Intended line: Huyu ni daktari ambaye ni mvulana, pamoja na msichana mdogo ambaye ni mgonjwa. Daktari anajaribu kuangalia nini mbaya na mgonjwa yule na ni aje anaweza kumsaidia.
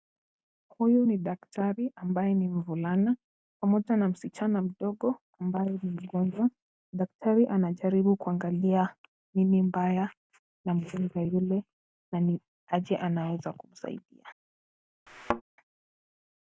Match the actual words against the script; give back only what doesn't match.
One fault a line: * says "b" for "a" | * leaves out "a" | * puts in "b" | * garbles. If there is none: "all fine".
all fine